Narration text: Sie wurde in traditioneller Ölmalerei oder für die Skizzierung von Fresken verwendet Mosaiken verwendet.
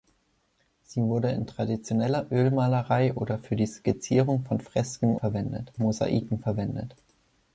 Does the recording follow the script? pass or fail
pass